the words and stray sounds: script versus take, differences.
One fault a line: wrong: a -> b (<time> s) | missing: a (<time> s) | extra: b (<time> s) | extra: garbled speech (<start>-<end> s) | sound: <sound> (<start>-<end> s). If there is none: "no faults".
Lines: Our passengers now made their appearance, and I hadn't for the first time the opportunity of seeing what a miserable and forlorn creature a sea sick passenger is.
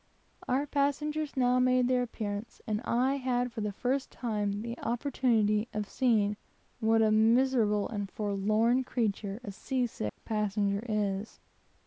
wrong: hadn't -> had (3.2 s)
sound: dropout (10.1-10.2 s)